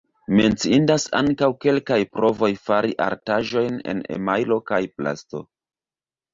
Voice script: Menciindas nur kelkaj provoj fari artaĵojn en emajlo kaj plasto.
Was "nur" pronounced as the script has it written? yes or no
no